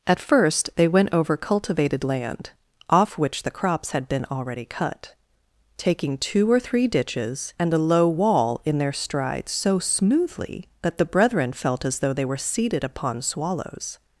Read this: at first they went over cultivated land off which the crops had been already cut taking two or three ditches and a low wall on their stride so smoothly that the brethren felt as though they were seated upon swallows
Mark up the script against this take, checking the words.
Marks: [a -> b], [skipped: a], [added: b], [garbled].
at first they went over cultivated land off which the crops had been already cut taking two or three ditches and a low wall [on -> in] their stride so smoothly that the brethren felt as though they were seated upon swallows